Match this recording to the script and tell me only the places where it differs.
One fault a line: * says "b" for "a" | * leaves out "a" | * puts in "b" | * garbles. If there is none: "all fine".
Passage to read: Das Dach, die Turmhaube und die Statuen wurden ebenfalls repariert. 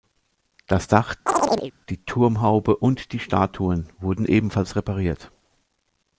all fine